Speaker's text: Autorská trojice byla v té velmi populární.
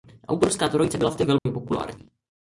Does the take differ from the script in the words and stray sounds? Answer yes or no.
yes